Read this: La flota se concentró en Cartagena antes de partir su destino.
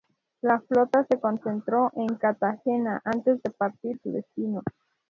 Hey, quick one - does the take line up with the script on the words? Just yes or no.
yes